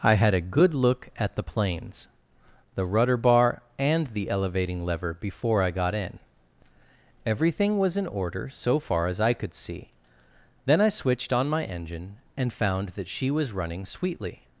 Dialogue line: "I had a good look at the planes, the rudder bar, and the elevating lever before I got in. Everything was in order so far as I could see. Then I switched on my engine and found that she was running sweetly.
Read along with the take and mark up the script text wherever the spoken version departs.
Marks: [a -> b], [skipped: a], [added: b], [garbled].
"I had a good look at the planes, the rudder bar, and the elevating lever before I got in. Everything was in order so far as I could see. Then I switched on my engine and found that she was running sweetly.